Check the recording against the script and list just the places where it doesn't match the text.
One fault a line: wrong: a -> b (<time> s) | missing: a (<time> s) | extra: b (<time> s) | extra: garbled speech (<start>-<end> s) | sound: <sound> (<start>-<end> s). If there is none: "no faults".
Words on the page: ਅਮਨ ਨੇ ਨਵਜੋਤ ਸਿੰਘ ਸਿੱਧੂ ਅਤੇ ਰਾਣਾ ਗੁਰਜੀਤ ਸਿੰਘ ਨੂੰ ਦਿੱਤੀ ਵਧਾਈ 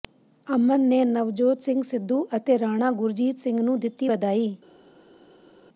no faults